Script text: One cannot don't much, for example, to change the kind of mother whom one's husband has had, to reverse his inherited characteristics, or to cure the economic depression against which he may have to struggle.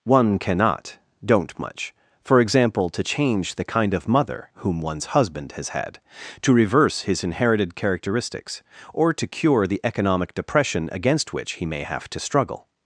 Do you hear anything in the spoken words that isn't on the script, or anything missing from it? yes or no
no